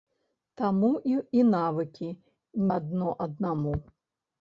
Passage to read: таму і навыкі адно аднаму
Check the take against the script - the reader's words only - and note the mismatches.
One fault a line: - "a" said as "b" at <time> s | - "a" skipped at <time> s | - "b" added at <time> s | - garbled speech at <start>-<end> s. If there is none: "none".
none